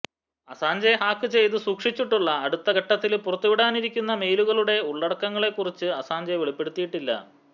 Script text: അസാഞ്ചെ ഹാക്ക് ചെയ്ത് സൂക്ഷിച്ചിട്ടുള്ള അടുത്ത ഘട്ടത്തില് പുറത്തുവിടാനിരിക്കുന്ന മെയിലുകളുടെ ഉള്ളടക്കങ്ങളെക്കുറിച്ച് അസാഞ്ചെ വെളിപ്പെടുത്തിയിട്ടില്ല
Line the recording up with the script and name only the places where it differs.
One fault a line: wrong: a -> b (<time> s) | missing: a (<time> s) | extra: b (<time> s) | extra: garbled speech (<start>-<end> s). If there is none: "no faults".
no faults